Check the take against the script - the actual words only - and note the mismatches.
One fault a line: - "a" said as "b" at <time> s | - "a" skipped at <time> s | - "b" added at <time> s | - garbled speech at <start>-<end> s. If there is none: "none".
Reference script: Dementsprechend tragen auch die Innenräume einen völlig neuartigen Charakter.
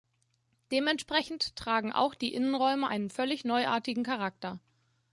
none